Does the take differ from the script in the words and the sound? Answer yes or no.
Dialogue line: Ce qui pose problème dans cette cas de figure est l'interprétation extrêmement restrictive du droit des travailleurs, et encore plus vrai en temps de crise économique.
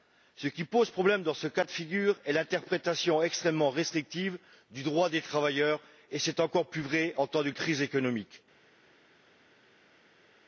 yes